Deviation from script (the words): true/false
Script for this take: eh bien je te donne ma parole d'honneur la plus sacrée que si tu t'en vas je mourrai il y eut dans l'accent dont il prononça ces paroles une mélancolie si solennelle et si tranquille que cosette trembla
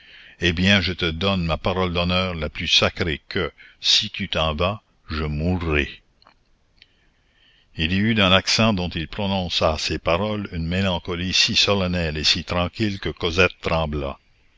false